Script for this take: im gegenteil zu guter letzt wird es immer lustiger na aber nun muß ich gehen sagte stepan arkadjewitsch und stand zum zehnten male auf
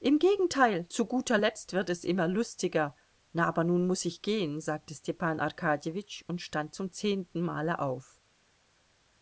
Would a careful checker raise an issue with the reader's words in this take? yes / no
no